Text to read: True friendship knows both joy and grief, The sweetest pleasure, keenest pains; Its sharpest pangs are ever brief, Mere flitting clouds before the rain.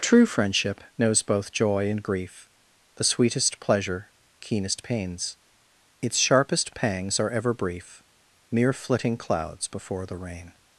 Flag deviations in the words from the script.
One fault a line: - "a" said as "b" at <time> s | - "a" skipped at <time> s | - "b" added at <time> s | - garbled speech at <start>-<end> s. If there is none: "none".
none